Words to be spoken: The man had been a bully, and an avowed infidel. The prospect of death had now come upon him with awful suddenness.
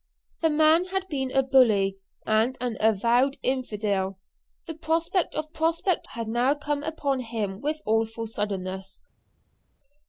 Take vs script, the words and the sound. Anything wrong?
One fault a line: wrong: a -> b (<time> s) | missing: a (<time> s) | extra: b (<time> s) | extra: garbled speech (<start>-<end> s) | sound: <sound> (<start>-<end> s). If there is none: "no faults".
wrong: death -> prospect (5.5 s)